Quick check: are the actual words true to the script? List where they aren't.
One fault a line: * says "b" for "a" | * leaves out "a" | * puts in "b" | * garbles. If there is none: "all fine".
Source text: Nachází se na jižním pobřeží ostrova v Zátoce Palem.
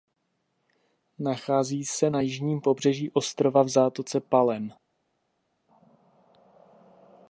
all fine